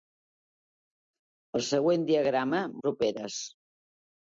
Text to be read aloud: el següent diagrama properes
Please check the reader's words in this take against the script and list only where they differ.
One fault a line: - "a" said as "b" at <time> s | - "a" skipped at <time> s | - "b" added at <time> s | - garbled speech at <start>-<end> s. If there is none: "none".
none